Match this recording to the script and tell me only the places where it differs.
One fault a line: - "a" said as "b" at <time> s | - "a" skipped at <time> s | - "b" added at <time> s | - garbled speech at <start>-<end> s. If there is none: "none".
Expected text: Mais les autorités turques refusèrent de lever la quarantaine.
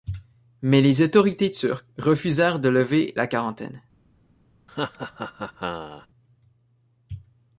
none